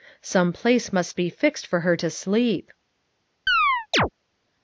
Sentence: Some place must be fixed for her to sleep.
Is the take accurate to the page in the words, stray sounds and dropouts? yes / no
no